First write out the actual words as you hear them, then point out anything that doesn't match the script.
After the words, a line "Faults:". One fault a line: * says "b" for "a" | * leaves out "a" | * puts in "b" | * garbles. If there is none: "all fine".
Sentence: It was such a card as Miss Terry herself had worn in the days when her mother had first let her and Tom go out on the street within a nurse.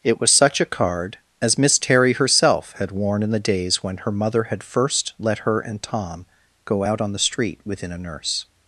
It was such a card as Miss Terry herself had worn in the days when her mother had first let her and Tom go out on the street within a nurse.
Faults:
all fine